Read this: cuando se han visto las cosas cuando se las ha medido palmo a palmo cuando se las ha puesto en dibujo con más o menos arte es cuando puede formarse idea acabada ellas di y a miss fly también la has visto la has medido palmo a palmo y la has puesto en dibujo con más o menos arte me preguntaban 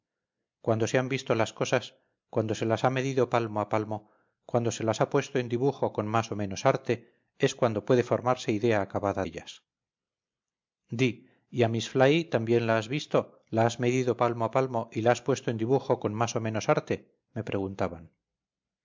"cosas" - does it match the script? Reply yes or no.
yes